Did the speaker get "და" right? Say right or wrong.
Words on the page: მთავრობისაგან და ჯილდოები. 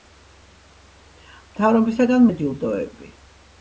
right